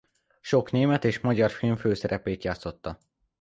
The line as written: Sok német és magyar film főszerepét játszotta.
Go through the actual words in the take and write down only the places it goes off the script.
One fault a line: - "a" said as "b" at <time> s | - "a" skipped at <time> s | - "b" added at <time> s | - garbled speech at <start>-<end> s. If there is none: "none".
none